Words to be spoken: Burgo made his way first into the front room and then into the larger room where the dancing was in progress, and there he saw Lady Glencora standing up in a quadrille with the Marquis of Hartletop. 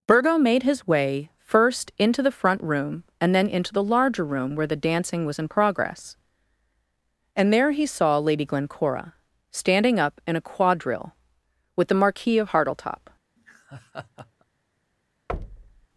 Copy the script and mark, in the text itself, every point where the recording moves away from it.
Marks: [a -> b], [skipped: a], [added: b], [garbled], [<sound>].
Burgo made his way first into the front room and then into the larger room where the dancing was in progress, and there he saw Lady Glencora standing up in a quadrille with the Marquis of Hartletop. [laugh] [thud]